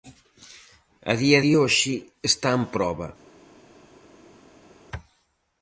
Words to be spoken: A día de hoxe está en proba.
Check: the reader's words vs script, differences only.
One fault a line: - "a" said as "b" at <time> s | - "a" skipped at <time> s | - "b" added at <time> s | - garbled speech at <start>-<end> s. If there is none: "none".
none